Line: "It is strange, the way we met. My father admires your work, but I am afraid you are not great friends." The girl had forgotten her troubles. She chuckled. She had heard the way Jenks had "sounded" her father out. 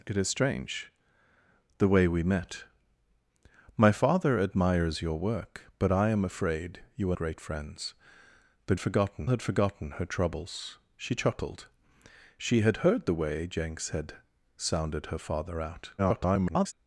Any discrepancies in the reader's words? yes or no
yes